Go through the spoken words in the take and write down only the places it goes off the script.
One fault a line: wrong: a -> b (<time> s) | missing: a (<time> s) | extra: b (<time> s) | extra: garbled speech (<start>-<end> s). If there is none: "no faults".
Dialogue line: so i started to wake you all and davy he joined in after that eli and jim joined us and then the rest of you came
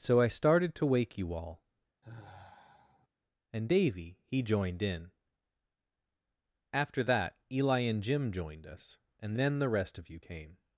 no faults